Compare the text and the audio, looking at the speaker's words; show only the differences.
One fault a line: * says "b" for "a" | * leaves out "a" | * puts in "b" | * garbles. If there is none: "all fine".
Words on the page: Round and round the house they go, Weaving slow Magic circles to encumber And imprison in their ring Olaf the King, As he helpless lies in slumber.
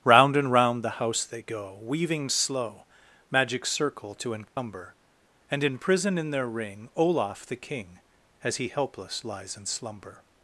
* says "circle" for "circles"